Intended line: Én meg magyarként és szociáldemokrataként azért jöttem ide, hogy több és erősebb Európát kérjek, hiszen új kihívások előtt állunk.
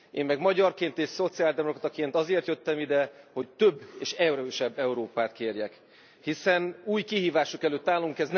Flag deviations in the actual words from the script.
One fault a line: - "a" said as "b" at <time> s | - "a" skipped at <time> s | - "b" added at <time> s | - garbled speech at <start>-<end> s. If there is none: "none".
none